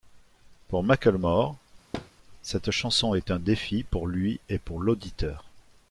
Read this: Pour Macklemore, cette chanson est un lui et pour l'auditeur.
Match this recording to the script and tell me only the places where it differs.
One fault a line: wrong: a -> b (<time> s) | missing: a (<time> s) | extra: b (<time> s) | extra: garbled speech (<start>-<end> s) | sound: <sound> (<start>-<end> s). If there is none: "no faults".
sound: thud (1.9-2.1 s)
extra: défi pour (3.4 s)